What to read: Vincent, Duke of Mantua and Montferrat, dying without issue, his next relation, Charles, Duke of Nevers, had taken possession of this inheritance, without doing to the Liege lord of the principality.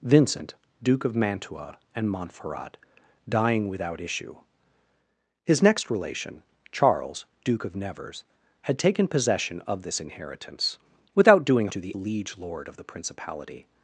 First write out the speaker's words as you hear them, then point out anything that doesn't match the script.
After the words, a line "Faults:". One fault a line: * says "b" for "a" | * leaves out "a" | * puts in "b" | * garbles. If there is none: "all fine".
Vincent, Duke of Mantua and Montferrat, dying without issue, his next relation, Charles, Duke of Nevers, had taken possession of this inheritance, without doing to the Liege lord of the principality.
Faults:
all fine